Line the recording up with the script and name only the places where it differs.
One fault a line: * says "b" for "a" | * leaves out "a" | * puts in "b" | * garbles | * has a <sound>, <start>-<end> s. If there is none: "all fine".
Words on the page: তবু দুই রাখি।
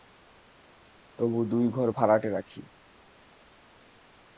* puts in "ঘর ভাড়াটে"